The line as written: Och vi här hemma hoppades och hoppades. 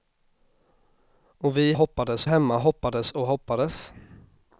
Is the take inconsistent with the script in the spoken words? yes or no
yes